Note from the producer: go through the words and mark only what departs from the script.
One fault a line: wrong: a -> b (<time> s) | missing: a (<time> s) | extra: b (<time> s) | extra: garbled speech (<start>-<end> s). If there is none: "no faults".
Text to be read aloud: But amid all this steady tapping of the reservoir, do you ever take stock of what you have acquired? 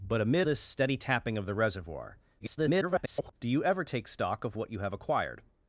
missing: all (0.5 s)
extra: garbled speech (2.4-3.3 s)